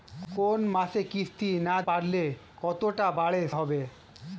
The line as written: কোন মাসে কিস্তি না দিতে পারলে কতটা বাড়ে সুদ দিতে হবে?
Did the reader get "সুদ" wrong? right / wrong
wrong